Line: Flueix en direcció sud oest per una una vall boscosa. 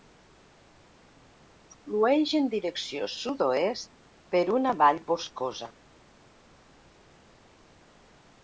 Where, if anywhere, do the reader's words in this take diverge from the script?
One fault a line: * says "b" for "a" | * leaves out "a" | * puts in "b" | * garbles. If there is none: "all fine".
* leaves out "una"